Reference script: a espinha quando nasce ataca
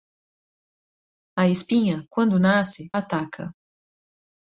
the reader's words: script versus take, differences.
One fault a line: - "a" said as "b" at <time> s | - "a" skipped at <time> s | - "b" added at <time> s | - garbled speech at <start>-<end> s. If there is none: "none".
none